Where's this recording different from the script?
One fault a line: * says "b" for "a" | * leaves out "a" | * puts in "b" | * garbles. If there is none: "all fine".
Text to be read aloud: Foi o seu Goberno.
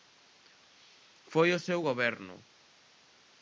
all fine